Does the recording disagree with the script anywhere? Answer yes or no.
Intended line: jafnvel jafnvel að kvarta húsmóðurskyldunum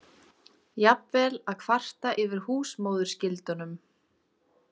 yes